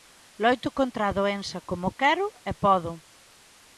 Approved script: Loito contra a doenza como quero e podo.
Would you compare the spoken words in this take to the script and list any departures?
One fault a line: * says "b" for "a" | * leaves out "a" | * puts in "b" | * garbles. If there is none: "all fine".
all fine